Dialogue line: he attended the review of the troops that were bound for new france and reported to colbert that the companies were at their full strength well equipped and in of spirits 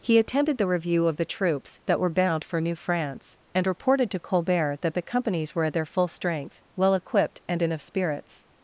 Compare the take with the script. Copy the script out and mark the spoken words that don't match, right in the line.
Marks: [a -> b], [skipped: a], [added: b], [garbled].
he attended the review of the troops that were bound for new france and reported to colbert that the companies were at their full strength well equipped and in of spirits